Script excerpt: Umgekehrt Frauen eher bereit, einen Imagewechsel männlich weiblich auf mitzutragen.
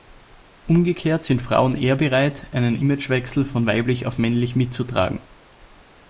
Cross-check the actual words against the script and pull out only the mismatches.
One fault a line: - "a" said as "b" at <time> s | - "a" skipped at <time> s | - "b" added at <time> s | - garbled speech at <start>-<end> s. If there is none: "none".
- "sind" added at 1.2 s
- "männlich" said as "von" at 3.4 s
- "männlich" added at 4.2 s